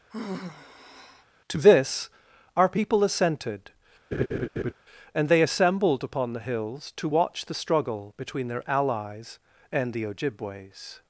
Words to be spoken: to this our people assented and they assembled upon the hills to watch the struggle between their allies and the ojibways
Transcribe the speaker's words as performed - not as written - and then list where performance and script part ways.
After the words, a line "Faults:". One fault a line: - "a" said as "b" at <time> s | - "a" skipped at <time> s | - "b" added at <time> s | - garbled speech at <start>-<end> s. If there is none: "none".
to this our people assented and they assembled upon the hills to watch the struggle between their allies and the ojibways
Faults:
none